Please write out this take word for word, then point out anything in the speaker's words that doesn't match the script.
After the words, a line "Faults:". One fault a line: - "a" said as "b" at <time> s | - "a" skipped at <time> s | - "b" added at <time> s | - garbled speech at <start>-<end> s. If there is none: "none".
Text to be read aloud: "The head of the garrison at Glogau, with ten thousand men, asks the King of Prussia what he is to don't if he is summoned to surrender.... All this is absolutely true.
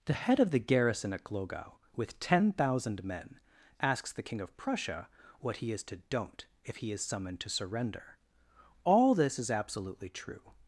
"The head of the garrison at Glogau, with ten thousand men, asks the King of Prussia what he is to don't if he is summoned to surrender.... All this is absolutely true.
Faults:
none